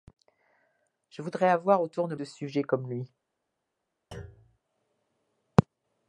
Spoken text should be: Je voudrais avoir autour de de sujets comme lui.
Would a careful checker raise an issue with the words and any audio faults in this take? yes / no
yes